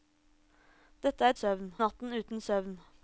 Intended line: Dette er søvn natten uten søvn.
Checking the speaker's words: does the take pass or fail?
pass